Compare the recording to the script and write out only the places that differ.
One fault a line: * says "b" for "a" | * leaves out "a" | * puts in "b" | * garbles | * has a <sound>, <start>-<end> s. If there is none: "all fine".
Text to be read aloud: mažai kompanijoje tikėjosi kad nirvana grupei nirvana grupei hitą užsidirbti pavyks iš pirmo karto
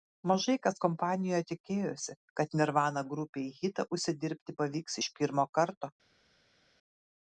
* puts in "kas"
* leaves out "nirvana grupei"